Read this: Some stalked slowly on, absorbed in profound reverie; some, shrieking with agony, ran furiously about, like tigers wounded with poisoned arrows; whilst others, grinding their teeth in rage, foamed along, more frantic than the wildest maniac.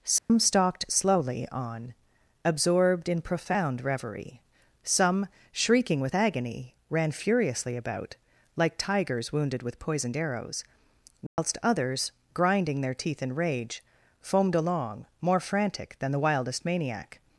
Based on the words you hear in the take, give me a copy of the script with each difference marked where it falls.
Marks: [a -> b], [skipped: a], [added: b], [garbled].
Some stalked slowly on, absorbed in profound reverie; some, shrieking with agony, ran furiously about, like tigers wounded with poisoned arrows; whilst others, grinding their teeth in rage, foamed along, more frantic than the wildest maniac.